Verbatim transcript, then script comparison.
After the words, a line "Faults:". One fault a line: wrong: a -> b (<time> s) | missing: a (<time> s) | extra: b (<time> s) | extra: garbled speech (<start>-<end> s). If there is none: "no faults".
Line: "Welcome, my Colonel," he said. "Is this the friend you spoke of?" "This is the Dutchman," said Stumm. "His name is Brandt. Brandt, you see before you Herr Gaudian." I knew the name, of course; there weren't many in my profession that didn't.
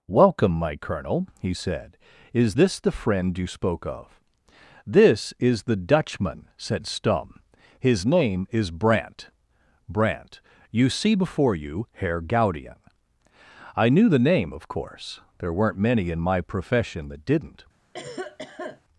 "Welcome, my Colonel," he said. "Is this the friend you spoke of?" "This is the Dutchman," said Stumm. "His name is Brandt. Brandt, you see before you Herr Gaudian." I knew the name, of course; there weren't many in my profession that didn't.
Faults:
no faults